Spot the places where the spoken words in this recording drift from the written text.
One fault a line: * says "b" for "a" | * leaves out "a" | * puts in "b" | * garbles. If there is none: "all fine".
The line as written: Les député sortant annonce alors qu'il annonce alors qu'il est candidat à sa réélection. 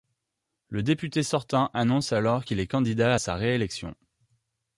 * says "Le" for "Les"
* leaves out "annonce alors qu'il"